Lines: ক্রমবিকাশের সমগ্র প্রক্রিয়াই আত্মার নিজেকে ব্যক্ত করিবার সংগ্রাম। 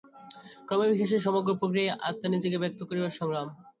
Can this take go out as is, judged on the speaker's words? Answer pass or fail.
pass